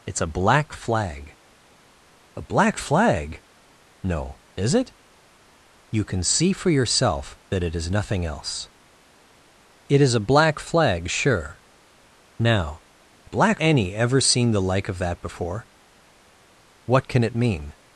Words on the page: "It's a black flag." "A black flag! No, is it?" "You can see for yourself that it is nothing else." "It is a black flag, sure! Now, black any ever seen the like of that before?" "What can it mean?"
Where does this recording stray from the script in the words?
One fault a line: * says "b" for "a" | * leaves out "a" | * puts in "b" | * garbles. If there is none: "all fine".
all fine